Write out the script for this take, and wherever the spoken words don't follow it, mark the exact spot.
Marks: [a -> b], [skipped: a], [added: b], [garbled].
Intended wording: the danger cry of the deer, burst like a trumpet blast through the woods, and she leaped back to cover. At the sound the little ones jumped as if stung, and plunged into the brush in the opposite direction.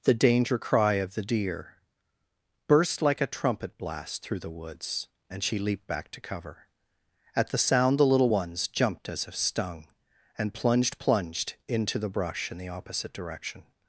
the danger cry of the deer, burst like a trumpet blast through the woods, and she leaped back to cover. At the sound the little ones jumped as if stung, and plunged [added: plunged] into the brush in the opposite direction.